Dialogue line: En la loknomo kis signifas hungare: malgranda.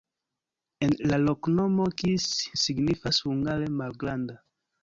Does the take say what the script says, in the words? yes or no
yes